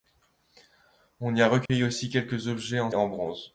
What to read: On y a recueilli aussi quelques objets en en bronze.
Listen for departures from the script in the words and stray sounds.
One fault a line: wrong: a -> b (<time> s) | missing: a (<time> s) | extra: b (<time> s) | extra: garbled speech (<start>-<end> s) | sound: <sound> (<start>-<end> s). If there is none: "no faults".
sound: dropout (1.7-1.7 s)